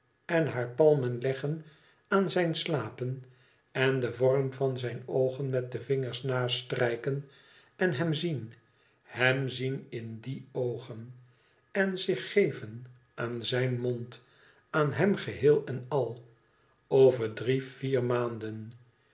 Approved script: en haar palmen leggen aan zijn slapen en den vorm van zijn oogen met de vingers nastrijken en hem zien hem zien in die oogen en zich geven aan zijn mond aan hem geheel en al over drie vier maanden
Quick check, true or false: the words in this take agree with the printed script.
true